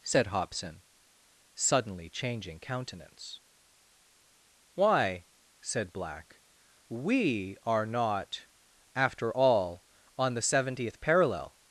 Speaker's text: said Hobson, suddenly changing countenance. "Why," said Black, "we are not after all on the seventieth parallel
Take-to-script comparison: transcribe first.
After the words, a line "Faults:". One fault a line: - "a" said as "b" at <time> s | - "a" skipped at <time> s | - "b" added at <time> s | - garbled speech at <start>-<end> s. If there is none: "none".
said Hobson, suddenly changing countenance. "Why," said Black, "we are not after all on the seventieth parallel
Faults:
none